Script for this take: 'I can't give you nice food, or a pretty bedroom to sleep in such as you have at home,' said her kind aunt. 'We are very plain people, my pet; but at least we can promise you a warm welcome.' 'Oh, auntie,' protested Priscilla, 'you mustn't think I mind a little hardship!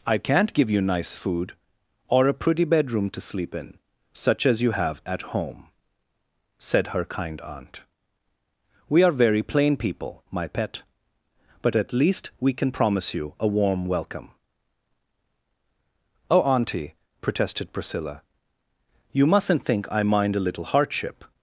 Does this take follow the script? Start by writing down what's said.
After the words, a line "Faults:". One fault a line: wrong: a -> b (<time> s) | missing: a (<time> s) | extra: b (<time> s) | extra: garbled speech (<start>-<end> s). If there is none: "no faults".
'I can't give you nice food, or a pretty bedroom to sleep in such as you have at home,' said her kind aunt. 'We are very plain people, my pet; but at least we can promise you a warm welcome.' 'Oh, auntie,' protested Priscilla, 'you mustn't think I mind a little hardship!
Faults:
no faults